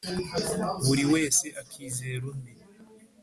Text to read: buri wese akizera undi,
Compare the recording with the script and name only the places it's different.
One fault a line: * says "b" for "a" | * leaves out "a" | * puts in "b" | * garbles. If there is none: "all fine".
all fine